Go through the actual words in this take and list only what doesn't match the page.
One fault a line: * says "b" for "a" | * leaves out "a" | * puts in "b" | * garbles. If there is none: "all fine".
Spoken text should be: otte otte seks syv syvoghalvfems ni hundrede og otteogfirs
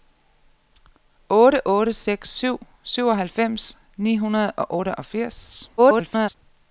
* garbles